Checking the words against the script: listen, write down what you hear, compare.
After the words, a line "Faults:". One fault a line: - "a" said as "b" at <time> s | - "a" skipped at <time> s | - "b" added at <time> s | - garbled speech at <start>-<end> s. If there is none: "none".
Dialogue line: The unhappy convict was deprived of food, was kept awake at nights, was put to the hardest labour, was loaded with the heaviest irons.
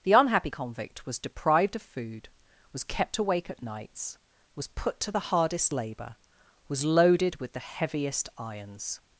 The unhappy convict was deprived of food, was kept awake at nights, was put to the hardest labour, was loaded with the heaviest irons.
Faults:
none